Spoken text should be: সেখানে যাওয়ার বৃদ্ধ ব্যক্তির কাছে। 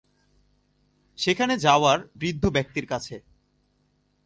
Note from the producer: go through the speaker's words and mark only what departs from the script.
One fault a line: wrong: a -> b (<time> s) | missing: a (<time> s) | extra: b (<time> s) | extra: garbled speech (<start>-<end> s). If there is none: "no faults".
no faults